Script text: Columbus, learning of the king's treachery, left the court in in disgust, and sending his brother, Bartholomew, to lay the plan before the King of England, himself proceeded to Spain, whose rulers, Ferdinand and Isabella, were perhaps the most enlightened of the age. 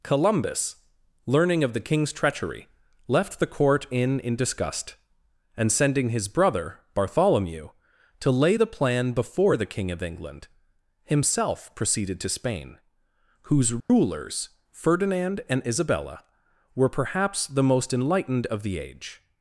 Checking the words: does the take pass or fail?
pass